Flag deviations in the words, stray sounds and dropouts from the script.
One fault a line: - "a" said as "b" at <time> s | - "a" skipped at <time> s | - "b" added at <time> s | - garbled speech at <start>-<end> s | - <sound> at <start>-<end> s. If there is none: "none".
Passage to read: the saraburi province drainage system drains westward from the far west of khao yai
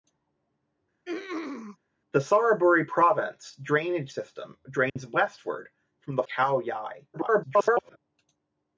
- throat clearing at 1.0-1.8 s
- dropout at 4.9-5.0 s
- "far west of" skipped at 6.2 s
- garbled speech at 7.1-8.0 s